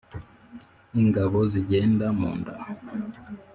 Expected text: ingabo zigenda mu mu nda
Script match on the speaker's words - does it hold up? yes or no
no